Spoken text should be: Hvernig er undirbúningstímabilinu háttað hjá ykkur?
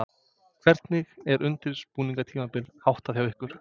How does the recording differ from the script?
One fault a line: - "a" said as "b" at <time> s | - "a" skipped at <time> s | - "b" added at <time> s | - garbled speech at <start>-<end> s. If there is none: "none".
none